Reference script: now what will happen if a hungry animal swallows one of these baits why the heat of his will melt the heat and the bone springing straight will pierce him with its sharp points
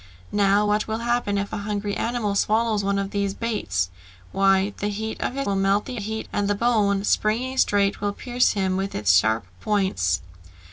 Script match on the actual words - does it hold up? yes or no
yes